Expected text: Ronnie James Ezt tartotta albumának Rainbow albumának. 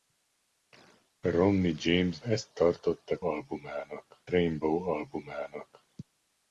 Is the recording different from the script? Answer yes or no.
no